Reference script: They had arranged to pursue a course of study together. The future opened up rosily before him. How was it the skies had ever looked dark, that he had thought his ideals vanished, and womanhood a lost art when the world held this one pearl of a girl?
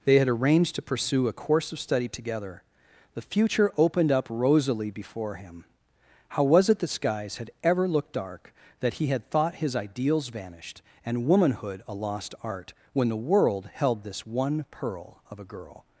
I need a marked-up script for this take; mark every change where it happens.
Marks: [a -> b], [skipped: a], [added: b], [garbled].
They had arranged to pursue a course of study together. The future opened up rosily before him. How was it the skies had ever looked dark, that he had thought his ideals vanished, and womanhood a lost art when the world held this one pearl of a girl?